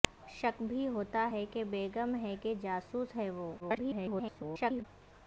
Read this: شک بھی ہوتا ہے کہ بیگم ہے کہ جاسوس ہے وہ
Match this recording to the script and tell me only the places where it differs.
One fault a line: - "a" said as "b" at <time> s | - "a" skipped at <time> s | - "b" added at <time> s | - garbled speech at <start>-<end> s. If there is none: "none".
- garbled speech at 3.6-4.8 s